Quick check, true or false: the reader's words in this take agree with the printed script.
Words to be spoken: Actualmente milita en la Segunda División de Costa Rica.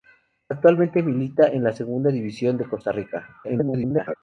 false